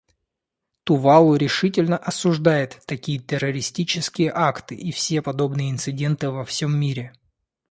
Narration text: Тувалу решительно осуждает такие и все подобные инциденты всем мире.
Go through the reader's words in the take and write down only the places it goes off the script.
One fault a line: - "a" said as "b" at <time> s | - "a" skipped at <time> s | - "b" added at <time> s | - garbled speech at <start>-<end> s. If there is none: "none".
- "террористические акты" added at 3.2 s
- "во" added at 6.3 s